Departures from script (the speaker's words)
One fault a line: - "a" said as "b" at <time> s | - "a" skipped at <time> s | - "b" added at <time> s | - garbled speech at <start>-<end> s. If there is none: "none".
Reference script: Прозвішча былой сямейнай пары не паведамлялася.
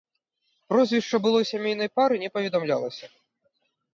none